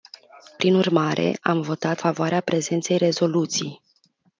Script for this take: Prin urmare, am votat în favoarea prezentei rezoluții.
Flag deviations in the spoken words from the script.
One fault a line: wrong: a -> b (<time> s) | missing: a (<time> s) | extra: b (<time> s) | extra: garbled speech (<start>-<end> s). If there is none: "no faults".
missing: în (2.0 s)